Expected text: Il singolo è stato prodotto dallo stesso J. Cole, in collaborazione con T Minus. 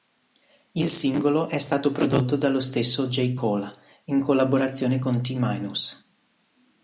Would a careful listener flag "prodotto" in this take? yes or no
no